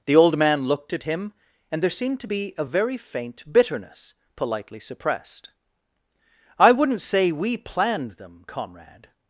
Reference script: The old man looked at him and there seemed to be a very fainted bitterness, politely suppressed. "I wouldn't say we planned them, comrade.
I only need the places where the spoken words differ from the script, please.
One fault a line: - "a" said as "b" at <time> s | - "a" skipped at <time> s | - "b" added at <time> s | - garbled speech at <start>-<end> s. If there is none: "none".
- "fainted" said as "faint" at 3.0 s